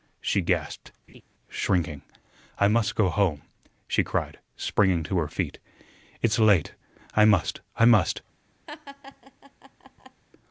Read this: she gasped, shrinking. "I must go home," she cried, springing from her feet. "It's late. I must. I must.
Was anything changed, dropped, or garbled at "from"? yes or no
yes